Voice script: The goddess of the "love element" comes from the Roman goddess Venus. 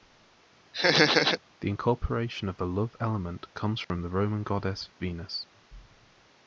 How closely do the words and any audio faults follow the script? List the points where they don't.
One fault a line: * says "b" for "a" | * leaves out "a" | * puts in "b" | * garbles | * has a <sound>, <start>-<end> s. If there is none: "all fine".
* has a laugh, 0.7-1.4 s
* says "incorporation" for "goddess"
* has a dropout, 3.8-3.9 s